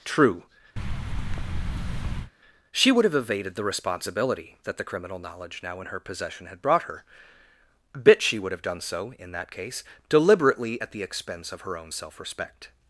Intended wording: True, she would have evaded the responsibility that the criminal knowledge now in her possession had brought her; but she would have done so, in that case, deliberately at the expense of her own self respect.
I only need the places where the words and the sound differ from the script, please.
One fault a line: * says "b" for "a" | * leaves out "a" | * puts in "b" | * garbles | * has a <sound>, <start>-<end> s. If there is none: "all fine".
* has a thud, 0.8-2.3 s
* says "bit" for "but"